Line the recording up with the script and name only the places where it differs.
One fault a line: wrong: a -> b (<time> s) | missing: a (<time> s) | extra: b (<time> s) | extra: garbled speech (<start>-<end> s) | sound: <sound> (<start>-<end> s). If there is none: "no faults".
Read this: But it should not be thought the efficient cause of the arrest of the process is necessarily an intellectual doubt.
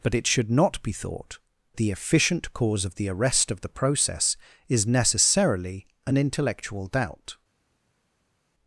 no faults